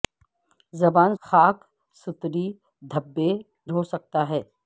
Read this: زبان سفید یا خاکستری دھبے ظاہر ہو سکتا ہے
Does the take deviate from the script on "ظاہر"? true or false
true